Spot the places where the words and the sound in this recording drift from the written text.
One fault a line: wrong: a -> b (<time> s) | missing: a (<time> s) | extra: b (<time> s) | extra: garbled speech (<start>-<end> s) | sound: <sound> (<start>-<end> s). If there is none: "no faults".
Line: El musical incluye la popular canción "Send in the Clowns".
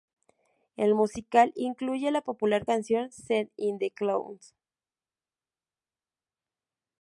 no faults